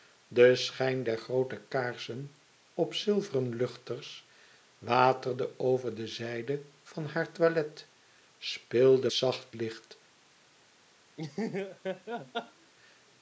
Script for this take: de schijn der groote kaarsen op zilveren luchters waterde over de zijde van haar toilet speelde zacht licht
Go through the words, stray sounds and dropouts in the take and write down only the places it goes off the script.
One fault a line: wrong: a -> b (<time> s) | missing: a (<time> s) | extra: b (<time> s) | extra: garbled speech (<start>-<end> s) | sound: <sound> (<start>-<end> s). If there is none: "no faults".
sound: laugh (11.2-12.7 s)